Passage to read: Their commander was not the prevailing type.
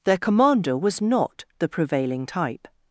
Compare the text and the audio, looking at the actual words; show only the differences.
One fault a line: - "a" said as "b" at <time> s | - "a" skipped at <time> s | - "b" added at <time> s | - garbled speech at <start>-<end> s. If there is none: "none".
none